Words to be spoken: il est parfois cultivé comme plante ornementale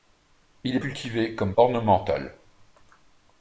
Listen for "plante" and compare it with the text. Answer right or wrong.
wrong